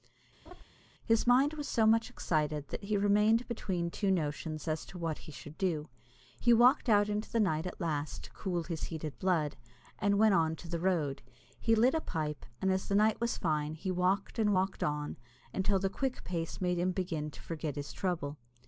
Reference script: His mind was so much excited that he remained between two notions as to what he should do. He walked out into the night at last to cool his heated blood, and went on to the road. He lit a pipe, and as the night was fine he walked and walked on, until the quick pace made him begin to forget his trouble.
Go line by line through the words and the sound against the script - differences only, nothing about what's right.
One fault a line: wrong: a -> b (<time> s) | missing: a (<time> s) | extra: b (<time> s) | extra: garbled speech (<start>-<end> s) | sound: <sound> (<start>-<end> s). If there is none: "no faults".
sound: laugh (0.5-0.6 s)